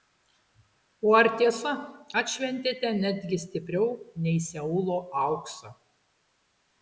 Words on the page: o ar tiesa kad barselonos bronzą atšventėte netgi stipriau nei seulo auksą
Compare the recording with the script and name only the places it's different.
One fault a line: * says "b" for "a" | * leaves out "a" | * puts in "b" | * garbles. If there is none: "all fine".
* leaves out "kad barselonos bronzą"